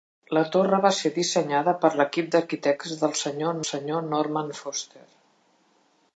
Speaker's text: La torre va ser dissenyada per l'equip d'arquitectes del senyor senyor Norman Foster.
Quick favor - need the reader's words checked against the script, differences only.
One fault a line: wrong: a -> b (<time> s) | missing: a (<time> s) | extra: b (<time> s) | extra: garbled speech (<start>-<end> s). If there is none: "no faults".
no faults